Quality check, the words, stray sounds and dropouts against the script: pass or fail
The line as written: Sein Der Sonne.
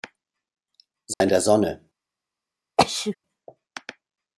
fail